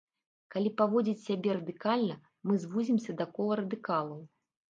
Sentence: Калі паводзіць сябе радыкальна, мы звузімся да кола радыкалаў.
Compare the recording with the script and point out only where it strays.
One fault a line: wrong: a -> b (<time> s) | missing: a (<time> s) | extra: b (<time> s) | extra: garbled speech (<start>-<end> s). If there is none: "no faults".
no faults